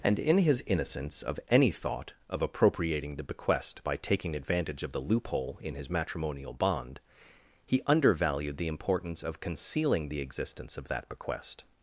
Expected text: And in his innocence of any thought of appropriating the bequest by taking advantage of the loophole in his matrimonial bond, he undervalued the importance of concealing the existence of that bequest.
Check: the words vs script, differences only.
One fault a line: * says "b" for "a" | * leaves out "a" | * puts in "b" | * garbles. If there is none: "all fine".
all fine